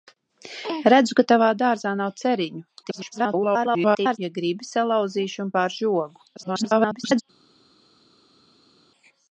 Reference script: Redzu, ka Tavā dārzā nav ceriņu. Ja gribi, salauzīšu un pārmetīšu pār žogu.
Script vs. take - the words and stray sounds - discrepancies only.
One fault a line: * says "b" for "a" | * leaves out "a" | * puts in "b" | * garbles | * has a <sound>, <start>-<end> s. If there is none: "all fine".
* garbles
* leaves out "pārmetīšu"
* garbles